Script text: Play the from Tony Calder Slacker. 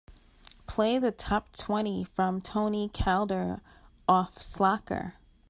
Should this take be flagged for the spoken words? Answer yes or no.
yes